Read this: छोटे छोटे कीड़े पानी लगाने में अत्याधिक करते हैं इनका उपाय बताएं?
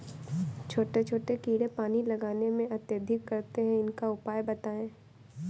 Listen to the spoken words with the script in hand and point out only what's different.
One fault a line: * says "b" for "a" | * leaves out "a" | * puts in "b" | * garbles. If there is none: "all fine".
all fine